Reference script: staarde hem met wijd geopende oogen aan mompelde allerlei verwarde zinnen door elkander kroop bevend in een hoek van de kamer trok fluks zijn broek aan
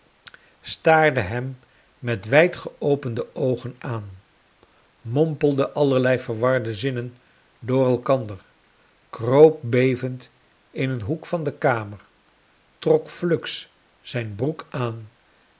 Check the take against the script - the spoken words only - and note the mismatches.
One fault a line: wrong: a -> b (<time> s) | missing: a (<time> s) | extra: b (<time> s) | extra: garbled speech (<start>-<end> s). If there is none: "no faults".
no faults